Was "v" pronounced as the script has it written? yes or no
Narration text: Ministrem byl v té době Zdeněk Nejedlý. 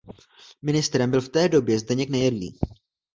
yes